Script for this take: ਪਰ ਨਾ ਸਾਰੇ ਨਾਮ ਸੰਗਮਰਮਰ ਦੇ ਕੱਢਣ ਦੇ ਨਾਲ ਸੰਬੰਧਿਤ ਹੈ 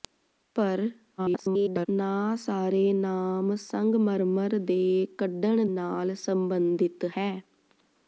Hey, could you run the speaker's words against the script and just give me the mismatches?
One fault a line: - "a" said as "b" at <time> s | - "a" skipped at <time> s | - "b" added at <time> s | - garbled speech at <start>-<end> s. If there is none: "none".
- garbled speech at 1.2-1.9 s
- "ਦੇ" skipped at 5.6 s